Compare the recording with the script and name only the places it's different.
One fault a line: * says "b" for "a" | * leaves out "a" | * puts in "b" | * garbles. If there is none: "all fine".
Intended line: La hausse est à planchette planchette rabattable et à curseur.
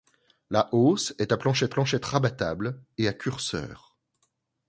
all fine